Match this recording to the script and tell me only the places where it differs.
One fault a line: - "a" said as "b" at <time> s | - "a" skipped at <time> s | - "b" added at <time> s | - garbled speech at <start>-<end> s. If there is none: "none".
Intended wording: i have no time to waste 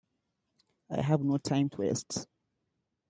none